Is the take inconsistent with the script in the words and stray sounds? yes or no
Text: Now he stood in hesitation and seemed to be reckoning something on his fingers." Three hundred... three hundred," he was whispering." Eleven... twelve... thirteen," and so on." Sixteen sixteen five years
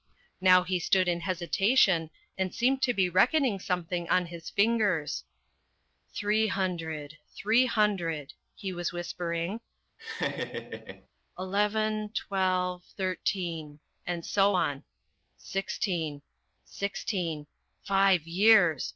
yes